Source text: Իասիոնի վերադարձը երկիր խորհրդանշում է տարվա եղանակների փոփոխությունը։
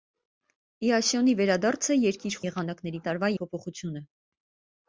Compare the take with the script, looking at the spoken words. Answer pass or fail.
fail